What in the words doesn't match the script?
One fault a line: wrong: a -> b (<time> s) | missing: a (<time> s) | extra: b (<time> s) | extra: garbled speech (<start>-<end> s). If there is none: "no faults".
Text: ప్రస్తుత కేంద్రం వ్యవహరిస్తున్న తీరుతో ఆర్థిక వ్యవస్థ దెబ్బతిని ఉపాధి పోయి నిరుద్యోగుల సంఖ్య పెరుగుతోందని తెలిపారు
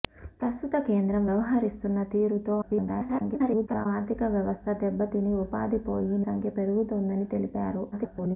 extra: garbled speech (2.6-3.9 s)
missing: నిరుద్యోగుల (6.2 s)
extra: garbled speech (7.9-8.4 s)